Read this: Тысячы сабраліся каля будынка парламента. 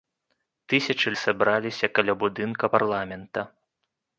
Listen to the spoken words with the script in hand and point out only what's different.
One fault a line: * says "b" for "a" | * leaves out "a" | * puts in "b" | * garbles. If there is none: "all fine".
all fine